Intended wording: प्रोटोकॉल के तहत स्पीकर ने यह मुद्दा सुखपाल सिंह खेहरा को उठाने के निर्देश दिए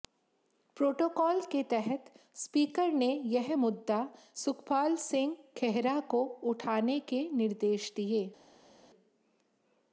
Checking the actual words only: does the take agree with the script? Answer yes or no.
yes